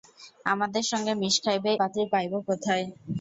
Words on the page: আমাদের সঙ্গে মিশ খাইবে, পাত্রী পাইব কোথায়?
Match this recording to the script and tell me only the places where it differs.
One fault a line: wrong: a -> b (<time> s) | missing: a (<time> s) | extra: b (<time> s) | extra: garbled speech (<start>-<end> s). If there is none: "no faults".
no faults